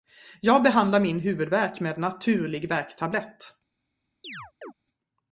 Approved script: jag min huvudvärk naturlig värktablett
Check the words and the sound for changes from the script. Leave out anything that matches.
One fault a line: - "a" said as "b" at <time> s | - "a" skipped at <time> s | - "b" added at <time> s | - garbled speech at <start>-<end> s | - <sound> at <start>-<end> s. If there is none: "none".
- "behandlar" added at 0.6 s
- "med" added at 1.8 s
- chirp at 4.2-4.7 s